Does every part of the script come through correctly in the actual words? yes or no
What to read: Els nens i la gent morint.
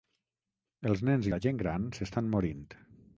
no